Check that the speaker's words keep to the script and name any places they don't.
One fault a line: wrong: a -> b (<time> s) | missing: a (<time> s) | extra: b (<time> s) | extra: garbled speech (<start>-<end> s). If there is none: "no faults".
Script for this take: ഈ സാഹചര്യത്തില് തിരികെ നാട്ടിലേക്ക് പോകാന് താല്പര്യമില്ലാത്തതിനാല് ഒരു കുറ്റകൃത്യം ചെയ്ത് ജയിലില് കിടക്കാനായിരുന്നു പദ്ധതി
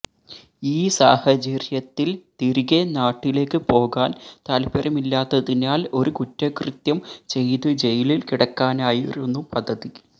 no faults